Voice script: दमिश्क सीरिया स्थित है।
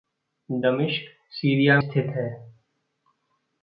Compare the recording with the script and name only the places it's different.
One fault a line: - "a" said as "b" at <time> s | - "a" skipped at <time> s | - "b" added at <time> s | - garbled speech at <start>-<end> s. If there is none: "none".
none